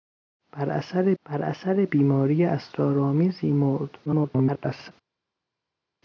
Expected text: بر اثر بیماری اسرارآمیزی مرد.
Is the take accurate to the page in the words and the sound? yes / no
no